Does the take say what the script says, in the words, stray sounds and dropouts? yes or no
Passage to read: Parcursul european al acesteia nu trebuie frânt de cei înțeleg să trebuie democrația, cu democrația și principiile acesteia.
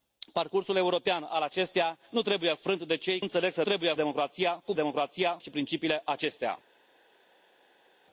yes